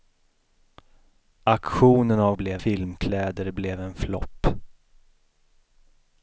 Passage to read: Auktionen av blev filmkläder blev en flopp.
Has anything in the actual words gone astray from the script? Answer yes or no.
no